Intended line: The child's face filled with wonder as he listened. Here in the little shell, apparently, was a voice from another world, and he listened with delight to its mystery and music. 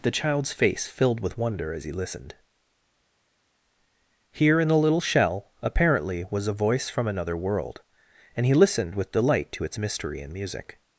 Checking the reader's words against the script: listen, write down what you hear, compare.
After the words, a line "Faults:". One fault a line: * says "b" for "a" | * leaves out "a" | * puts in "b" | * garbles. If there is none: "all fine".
The child's face filled with wonder as he listened. Here in the little shell, apparently, was a voice from another world, and he listened with delight to its mystery and music.
Faults:
all fine